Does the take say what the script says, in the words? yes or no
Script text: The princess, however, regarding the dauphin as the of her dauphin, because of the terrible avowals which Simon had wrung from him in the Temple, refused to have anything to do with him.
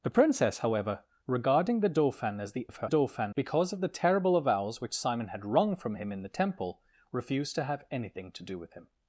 yes